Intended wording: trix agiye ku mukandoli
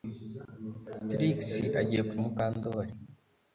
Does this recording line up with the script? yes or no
yes